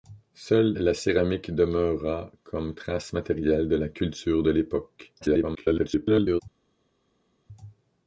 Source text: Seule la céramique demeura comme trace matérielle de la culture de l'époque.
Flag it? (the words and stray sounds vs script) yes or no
yes